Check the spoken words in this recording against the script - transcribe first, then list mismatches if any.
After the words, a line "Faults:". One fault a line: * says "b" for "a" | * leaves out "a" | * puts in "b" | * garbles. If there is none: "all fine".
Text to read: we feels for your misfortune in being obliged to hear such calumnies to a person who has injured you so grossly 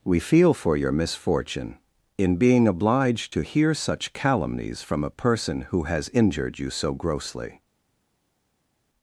we feel for your misfortune in being obliged to hear such calumnies from a person who has injured you so grossly
Faults:
* says "feel" for "feels"
* says "from" for "to"